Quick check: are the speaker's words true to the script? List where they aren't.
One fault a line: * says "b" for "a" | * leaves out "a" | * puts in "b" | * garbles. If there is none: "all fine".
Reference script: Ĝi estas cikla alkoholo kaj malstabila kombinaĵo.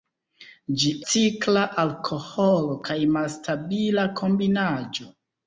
* leaves out "estas"